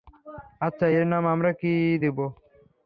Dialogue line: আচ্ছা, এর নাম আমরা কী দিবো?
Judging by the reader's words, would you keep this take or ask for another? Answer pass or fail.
pass